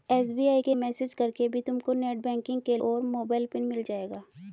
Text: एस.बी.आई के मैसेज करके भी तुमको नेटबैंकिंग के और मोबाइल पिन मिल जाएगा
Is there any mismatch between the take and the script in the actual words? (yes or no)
no